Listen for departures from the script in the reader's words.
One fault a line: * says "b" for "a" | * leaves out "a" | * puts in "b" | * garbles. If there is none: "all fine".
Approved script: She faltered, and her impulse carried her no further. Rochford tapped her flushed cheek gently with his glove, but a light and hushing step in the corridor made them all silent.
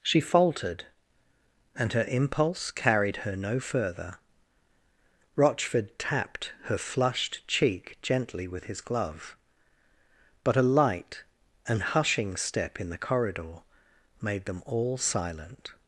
all fine